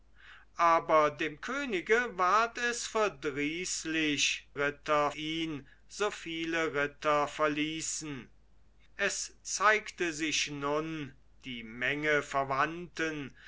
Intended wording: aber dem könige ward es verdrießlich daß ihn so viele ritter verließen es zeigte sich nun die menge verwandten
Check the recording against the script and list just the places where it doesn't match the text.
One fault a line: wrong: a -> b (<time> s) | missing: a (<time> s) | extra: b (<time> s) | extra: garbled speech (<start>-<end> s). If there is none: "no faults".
wrong: daß -> ritter (4.6 s)